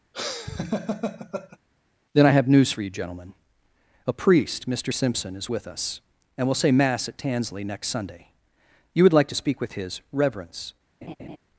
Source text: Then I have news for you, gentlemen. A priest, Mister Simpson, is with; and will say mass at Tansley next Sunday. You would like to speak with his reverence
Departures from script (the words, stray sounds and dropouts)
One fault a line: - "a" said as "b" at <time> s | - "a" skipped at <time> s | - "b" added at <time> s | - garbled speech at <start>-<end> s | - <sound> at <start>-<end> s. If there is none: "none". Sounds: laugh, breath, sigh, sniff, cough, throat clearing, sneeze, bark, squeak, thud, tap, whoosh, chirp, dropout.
- laugh at 0.1-1.6 s
- "us" added at 5.7 s
- laugh at 11.0-11.4 s